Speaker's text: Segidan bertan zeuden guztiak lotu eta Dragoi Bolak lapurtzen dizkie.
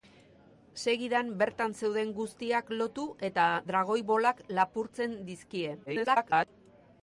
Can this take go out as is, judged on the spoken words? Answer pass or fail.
fail